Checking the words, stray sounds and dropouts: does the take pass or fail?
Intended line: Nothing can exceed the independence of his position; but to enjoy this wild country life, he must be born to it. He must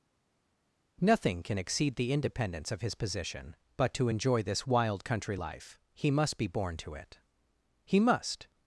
pass